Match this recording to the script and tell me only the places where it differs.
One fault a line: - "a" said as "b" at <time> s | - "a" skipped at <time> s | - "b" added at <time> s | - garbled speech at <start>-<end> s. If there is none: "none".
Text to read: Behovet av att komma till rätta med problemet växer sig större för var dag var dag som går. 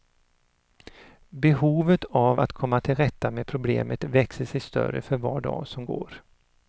- "var dag" skipped at 5.7 s